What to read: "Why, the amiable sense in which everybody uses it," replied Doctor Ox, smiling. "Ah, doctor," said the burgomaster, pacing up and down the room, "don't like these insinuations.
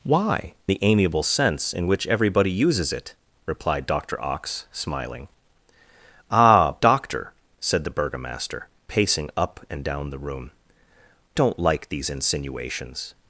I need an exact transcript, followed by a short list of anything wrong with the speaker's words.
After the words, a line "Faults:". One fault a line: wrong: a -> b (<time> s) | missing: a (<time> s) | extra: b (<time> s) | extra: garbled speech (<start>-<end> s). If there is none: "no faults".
"Why, the amiable sense in which everybody uses it," replied Doctor Ox, smiling. "Ah, doctor," said the burgomaster, pacing up and down the room, "don't like these insinuations.
Faults:
no faults